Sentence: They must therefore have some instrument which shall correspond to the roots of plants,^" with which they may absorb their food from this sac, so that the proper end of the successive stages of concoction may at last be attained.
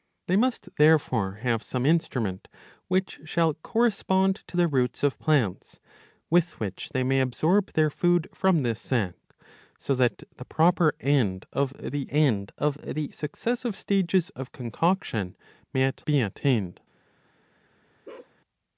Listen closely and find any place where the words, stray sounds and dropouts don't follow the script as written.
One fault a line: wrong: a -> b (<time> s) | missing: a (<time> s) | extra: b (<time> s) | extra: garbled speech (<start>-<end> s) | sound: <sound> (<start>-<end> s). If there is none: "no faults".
extra: end of the (12.1 s)
missing: last (16.1 s)
sound: bark (18.0-18.3 s)